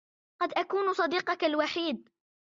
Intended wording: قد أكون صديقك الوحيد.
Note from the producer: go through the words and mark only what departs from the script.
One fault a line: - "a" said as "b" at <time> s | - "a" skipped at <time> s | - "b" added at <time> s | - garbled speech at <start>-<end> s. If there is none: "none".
none